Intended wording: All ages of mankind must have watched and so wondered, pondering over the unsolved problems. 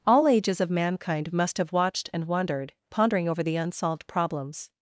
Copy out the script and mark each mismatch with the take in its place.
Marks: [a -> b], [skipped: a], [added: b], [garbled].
All ages of mankind must have watched and [skipped: so] wondered, pondering over the unsolved problems.